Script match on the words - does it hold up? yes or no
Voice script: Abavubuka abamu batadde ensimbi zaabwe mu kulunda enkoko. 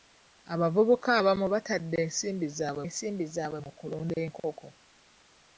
no